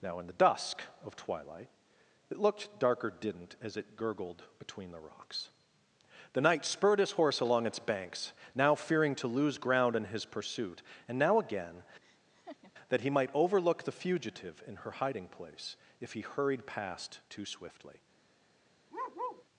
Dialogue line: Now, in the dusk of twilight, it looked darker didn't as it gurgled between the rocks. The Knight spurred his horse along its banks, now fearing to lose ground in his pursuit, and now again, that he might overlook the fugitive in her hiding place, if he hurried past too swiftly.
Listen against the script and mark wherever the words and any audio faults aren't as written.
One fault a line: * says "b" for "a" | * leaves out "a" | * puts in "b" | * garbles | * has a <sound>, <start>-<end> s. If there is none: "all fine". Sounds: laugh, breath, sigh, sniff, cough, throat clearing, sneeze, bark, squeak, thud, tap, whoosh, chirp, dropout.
* has a laugh, 12.0-12.7 s
* has a bark, 18.9-19.5 s